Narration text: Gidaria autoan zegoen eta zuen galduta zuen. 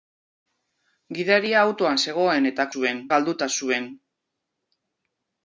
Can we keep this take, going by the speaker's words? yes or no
yes